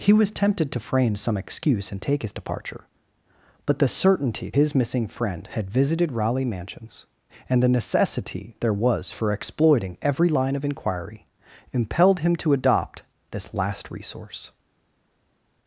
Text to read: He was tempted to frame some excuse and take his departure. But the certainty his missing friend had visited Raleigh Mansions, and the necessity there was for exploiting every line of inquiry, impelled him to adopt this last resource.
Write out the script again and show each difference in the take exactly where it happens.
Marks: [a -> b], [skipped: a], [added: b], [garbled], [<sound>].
He was tempted to frame some excuse and take his departure. But the certainty his missing friend had visited Raleigh Mansions, and the necessity there was for exploiting every line of inquiry, impelled him to adopt this last resource.